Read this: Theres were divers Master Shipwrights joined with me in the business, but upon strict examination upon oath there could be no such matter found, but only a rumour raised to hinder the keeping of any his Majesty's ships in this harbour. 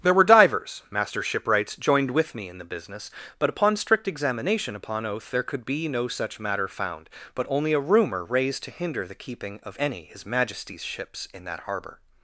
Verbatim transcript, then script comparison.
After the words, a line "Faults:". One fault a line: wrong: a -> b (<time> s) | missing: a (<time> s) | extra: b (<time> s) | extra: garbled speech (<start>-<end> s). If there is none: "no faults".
There were divers Master Shipwrights joined with me in the business, but upon strict examination upon oath there could be no such matter found, but only a rumour raised to hinder the keeping of any his Majesty's ships in that harbour.
Faults:
wrong: Theres -> There (0.0 s)
wrong: this -> that (11.4 s)